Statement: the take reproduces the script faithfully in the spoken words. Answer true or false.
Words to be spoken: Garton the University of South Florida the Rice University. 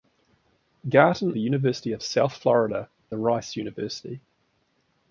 true